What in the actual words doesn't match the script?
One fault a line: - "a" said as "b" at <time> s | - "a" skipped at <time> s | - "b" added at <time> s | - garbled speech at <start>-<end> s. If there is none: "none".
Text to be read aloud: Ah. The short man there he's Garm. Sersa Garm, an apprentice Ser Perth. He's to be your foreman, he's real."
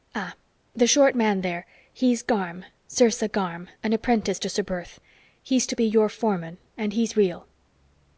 - "to" added at 4.4 s
- "and" added at 6.7 s